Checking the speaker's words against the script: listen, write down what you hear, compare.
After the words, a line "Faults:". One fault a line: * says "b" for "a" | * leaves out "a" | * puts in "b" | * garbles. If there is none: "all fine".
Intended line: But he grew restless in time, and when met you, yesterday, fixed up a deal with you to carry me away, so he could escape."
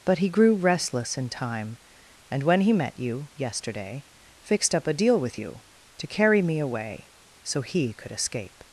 But he grew restless in time, and when he met you, yesterday, fixed up a deal with you to carry me away, so he could escape."
Faults:
* puts in "he"